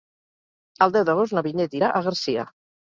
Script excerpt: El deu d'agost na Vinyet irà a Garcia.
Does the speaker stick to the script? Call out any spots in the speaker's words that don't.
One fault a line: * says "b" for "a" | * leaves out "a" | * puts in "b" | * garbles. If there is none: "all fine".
all fine